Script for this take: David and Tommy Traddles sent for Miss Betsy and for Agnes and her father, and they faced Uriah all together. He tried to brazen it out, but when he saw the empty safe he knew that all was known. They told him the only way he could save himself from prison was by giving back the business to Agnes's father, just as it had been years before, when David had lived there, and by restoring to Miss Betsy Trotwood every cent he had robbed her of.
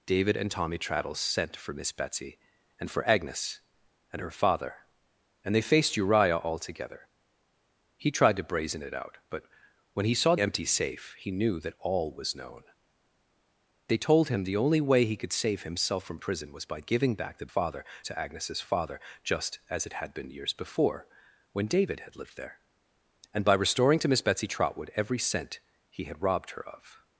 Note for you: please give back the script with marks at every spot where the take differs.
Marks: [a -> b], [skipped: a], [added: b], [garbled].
David and Tommy Traddles sent for Miss Betsy and for Agnes and her father, and they faced Uriah all together. He tried to brazen it out, but when he saw [skipped: the] empty safe he knew that all was known. They told him the only way he could save himself from prison was by giving back the [business -> father] to Agnes's father, just as it had been years before, when David had lived there, and by restoring to Miss Betsy Trotwood every cent he had robbed her of.